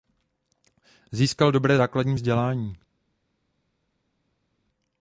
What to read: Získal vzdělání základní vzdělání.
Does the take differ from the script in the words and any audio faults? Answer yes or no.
yes